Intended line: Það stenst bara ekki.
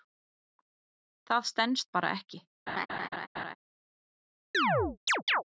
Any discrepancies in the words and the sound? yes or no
yes